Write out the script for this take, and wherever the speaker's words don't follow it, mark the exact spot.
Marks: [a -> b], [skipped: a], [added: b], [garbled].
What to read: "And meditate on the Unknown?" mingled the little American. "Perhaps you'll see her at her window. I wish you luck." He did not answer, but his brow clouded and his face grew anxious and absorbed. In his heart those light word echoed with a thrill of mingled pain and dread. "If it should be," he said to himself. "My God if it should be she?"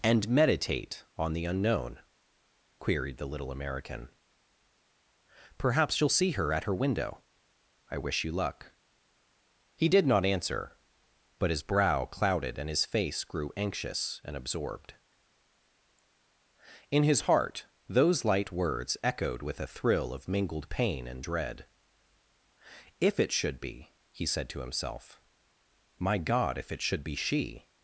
"And meditate on the Unknown?" [mingled -> queried] the little American. "Perhaps you'll see her at her window. I wish you luck." He did not answer, but his brow clouded and his face grew anxious and absorbed. In his heart those light [word -> words] echoed with a thrill of mingled pain and dread. "If it should be," he said to himself. "My God if it should be she?"